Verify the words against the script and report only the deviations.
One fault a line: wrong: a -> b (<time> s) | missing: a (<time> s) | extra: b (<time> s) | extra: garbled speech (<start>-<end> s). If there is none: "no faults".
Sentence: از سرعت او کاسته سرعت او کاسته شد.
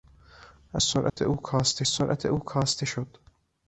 no faults